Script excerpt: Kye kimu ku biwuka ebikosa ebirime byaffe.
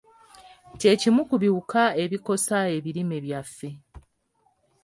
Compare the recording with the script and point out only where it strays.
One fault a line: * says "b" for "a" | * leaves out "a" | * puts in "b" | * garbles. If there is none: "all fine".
all fine